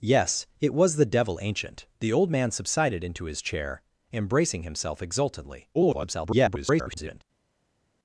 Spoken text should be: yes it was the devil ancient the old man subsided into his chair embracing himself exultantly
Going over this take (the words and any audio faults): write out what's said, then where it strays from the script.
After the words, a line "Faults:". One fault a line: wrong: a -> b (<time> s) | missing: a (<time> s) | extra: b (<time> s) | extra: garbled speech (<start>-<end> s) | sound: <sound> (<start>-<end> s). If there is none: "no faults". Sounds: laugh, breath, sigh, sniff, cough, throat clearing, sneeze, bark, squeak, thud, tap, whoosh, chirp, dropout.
yes it was the devil ancient the old man subsided into his chair embracing himself exultantly [garbled]
Faults:
extra: garbled speech (5.7-7.2 s)